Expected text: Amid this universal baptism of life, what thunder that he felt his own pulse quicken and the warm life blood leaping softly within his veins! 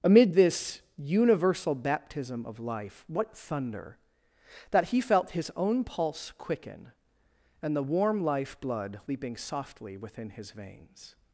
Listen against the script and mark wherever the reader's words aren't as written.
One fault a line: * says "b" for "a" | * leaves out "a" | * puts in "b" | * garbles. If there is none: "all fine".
all fine